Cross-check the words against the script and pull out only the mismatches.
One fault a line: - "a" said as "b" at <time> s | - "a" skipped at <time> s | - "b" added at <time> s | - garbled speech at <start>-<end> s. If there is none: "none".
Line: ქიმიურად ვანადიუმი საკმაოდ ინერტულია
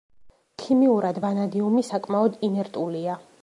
none